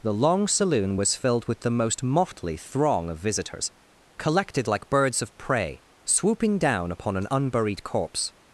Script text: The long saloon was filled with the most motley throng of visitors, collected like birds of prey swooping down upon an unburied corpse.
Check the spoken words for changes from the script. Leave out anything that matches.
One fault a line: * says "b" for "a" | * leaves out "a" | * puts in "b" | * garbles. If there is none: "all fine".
all fine